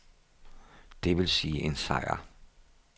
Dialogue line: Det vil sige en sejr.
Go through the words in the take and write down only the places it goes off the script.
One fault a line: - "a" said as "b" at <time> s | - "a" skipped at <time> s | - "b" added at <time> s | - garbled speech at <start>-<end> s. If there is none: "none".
none